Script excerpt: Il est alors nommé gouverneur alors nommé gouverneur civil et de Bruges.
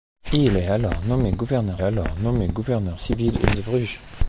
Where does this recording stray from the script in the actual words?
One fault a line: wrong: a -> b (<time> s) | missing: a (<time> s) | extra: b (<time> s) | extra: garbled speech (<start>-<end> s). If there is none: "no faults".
no faults